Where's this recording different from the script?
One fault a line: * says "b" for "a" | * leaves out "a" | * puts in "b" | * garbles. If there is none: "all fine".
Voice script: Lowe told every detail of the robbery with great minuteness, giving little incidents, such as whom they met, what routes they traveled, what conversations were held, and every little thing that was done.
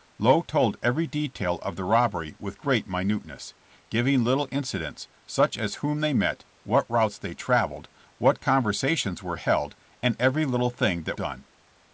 * leaves out "was"